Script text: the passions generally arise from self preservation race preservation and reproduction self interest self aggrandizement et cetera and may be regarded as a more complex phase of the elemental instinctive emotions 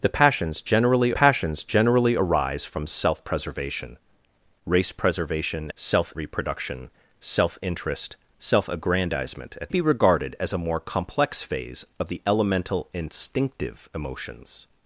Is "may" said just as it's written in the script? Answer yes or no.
no